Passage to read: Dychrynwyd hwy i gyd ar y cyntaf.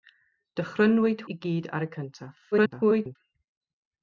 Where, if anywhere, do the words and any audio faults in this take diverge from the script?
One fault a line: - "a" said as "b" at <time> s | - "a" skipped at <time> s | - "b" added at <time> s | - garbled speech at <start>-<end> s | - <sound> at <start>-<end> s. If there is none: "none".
- "hwy" skipped at 1.2 s
- garbled speech at 2.5-3.2 s